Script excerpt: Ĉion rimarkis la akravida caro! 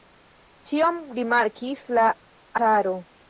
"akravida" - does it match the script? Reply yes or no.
no